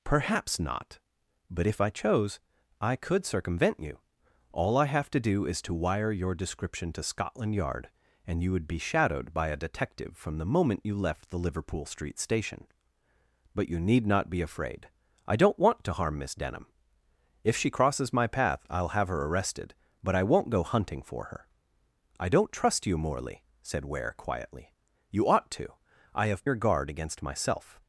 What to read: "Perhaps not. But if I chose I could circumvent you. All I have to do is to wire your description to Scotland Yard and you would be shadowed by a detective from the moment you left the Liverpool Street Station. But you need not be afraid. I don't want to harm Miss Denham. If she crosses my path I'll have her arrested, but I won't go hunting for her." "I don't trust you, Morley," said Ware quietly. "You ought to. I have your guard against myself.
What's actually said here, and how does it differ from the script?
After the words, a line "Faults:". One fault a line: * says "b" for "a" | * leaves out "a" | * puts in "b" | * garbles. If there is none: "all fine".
"Perhaps not. But if I chose I could circumvent you. All I have to do is to wire your description to Scotland Yard and you would be shadowed by a detective from the moment you left the Liverpool Street Station. But you need not be afraid. I don't want to harm Miss Denham. If she crosses my path I'll have her arrested, but I won't go hunting for her." "I don't trust you, Morley," said Ware quietly. "You ought to. I have your guard against myself.
Faults:
all fine